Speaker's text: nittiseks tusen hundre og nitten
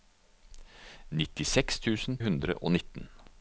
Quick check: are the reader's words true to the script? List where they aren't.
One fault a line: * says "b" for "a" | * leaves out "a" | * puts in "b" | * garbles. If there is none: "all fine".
all fine